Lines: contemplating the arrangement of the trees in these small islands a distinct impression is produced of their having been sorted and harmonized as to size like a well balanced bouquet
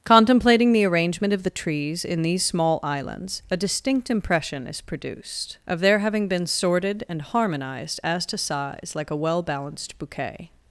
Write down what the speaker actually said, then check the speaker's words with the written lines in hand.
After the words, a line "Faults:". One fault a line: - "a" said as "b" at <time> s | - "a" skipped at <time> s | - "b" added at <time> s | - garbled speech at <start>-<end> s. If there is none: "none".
contemplating the arrangement of the trees in these small islands a distinct impression is produced of their having been sorted and harmonized as to size like a well balanced bouquet
Faults:
none